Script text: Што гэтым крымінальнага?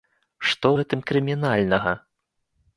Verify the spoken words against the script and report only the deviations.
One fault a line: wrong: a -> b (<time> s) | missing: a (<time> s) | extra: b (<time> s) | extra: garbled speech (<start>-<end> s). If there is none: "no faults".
no faults